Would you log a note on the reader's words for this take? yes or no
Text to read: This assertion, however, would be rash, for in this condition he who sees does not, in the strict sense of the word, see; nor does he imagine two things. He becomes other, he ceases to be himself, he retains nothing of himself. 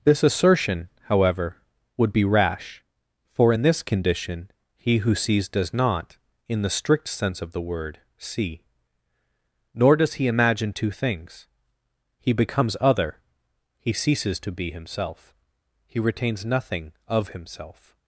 no